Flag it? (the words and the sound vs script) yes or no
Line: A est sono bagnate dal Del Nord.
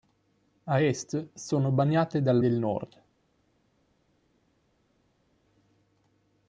no